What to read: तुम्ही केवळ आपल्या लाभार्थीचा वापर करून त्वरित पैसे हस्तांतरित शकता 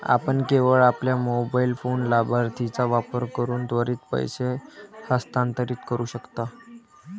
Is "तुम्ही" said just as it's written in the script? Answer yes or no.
no